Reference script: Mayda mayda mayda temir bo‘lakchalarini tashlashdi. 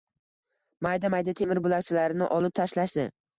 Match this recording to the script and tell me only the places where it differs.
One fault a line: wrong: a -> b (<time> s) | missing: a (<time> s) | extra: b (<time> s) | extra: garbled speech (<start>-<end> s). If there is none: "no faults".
missing: mayda (1.4 s)
extra: olib (2.4 s)